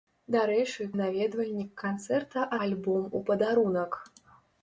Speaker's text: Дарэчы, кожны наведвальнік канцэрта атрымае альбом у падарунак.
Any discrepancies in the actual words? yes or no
yes